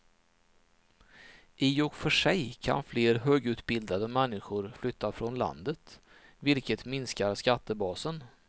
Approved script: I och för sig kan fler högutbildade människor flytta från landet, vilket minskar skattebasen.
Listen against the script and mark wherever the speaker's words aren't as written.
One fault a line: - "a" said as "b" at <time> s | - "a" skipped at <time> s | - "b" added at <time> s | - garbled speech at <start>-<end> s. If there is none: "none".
none